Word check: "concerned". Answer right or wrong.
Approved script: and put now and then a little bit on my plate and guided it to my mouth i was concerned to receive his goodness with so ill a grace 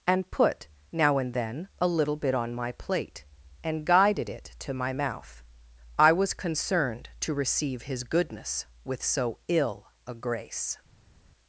right